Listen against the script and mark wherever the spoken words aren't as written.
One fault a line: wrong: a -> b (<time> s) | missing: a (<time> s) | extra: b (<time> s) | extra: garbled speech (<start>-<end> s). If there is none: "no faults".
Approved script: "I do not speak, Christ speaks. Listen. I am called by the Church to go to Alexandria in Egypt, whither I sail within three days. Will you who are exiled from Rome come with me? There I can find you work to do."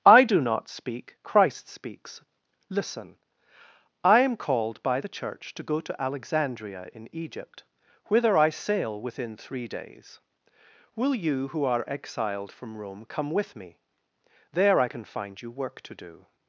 no faults